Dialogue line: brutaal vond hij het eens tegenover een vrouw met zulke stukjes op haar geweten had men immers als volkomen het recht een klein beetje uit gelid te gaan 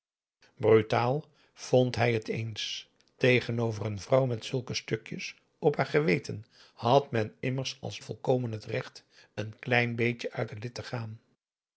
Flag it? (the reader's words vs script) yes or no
no